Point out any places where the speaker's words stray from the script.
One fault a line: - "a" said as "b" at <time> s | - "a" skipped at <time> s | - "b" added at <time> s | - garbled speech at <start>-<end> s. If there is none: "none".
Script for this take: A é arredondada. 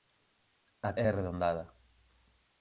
none